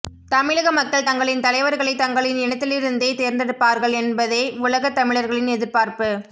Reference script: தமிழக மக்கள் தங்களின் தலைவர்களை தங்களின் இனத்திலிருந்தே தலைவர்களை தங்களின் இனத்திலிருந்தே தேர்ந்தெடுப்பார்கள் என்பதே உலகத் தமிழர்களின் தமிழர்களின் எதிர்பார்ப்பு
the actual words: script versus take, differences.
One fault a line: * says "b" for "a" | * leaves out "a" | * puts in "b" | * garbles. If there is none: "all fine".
* leaves out "தலைவர்களை தங்களின் இனத்திலிருந்தே"
* leaves out "தமிழர்களின்"